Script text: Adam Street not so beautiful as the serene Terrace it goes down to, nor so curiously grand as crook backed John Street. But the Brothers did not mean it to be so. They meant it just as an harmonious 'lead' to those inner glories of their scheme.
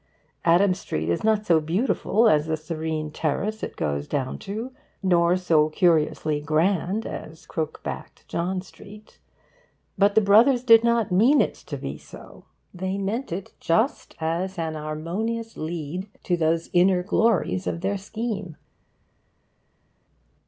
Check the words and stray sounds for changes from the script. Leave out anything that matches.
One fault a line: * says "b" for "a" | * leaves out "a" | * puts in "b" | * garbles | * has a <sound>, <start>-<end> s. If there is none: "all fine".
* puts in "is"